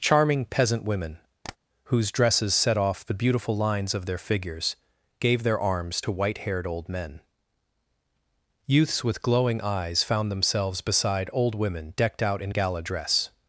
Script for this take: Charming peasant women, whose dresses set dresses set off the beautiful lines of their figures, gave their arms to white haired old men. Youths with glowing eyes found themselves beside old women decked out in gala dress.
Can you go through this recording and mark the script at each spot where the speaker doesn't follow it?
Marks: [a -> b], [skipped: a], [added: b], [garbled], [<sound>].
Charming peasant women, [tap] whose dresses set [skipped: dresses set] off the beautiful lines of their figures, gave their arms to white haired old men. Youths with glowing eyes found themselves beside old women decked out in gala dress.